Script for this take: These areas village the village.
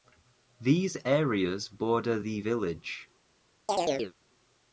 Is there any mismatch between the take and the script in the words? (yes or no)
yes